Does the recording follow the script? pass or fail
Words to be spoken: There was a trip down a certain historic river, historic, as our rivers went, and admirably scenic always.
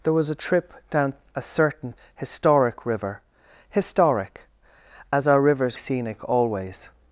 fail